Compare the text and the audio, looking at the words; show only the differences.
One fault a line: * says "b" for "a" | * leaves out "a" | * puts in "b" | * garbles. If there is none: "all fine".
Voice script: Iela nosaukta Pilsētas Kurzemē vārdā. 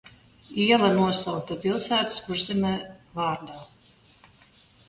all fine